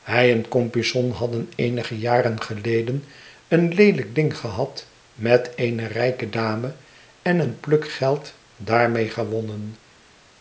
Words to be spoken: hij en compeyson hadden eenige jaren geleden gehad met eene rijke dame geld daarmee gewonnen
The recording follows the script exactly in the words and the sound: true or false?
false